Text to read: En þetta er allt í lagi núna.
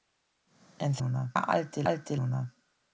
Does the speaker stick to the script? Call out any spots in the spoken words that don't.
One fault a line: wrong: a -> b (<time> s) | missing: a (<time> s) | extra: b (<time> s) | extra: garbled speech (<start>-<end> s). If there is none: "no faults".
wrong: þetta -> núna (1.0 s)
wrong: lagi -> allt (1.9 s)